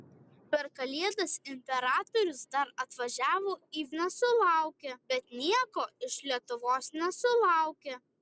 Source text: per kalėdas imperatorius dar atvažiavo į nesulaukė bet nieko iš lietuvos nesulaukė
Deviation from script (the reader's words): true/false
false